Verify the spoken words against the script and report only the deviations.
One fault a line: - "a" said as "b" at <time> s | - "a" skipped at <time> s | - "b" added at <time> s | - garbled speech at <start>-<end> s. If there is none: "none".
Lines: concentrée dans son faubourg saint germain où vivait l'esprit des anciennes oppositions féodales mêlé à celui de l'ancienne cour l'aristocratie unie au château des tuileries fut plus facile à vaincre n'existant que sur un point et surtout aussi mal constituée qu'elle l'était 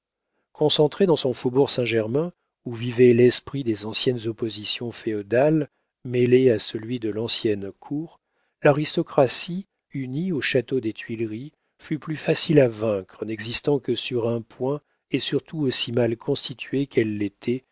none